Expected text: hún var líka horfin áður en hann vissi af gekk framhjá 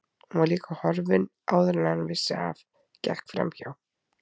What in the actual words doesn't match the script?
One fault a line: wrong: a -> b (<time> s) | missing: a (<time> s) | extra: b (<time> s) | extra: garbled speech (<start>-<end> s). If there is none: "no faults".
no faults